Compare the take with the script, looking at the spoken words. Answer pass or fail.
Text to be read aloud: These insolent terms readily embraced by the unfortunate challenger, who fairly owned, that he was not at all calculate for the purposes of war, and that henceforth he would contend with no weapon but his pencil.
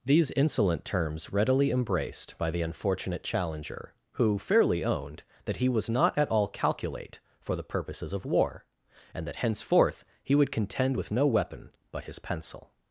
pass